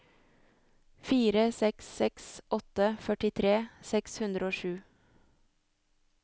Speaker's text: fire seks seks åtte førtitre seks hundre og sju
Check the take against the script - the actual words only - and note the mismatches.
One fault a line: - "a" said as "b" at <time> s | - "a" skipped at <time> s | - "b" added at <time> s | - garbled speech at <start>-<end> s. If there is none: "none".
none